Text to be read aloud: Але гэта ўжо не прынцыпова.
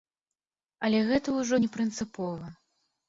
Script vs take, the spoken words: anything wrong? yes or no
no